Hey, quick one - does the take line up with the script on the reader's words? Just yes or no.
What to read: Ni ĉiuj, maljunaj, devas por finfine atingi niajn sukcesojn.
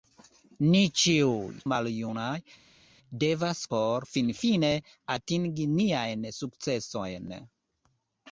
yes